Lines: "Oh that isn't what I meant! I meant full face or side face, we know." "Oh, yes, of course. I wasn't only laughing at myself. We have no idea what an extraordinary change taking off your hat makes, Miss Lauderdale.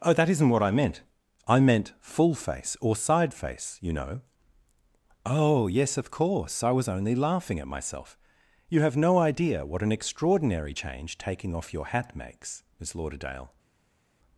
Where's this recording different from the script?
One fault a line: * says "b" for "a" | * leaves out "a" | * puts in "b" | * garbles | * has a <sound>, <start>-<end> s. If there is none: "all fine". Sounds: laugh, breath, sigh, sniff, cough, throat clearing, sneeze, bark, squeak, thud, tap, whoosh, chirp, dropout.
* says "you" for "we"
* says "was" for "wasn't"
* says "You" for "We"